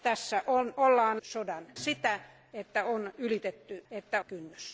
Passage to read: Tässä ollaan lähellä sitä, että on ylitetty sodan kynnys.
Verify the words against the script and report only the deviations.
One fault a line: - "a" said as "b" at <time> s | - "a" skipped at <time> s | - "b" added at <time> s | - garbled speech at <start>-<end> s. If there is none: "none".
- "lähellä" said as "sodan" at 1.2 s
- "sodan" said as "että" at 3.9 s